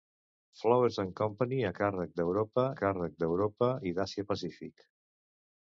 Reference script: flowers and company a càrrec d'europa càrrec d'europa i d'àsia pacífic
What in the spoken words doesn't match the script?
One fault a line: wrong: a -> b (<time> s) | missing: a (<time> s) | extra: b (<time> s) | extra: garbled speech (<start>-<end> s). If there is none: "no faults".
no faults